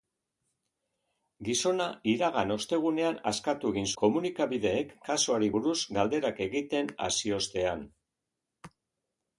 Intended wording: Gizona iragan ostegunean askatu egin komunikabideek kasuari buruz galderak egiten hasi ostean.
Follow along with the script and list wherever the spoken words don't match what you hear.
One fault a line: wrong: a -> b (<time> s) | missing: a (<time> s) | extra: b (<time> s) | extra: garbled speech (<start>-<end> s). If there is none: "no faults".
no faults